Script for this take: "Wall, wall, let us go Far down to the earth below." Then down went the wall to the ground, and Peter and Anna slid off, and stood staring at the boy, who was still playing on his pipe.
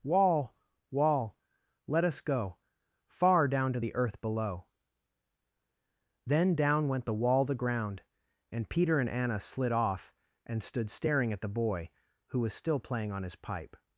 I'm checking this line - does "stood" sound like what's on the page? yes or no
yes